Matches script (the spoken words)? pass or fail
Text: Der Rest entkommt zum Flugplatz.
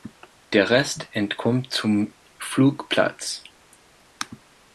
pass